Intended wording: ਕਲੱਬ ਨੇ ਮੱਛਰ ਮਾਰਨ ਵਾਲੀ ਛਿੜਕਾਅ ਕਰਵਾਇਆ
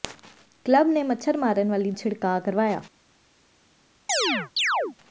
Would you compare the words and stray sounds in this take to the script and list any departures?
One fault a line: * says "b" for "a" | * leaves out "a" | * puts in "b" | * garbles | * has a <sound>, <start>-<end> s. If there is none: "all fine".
* has a chirp, 4.1-5.0 s